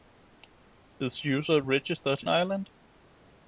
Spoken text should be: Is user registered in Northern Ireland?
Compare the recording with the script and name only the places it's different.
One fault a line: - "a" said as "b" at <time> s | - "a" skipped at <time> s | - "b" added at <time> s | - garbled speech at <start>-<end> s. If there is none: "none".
- "in Northern" skipped at 2.2 s